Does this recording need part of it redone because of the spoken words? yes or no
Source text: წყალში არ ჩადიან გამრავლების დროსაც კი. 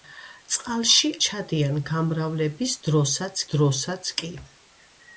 yes